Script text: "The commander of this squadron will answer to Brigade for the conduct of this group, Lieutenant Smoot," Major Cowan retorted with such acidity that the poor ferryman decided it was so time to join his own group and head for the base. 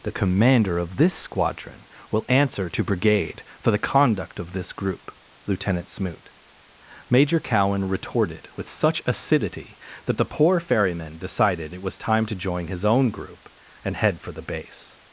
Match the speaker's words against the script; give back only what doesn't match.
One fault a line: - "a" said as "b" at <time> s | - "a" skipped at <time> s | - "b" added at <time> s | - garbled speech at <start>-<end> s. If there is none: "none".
- "so" skipped at 12.0 s